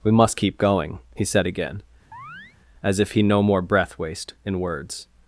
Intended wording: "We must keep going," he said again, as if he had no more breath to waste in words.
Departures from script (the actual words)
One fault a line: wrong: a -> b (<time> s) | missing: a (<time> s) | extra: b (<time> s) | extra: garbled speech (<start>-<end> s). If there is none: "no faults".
missing: had (3.2 s)
missing: to (4.0 s)